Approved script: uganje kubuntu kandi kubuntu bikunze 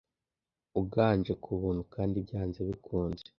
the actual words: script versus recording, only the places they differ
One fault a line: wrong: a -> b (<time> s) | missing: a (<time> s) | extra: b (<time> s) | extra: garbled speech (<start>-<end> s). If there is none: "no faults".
wrong: kubuntu -> byanze (2.2 s)